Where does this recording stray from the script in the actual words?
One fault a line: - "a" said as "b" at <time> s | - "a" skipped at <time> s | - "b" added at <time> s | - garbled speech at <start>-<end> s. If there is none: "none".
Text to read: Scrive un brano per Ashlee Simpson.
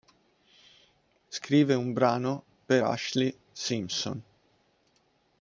none